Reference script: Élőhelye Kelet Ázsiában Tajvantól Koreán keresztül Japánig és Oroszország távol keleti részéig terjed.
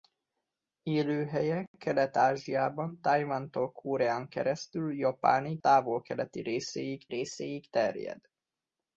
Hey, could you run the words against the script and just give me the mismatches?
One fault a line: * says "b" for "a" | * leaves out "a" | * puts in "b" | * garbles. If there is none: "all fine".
* leaves out "és Oroszország"
* puts in "részéig"